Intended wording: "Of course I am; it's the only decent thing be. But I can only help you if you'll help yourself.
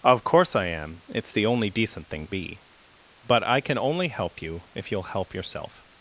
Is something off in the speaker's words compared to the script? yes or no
no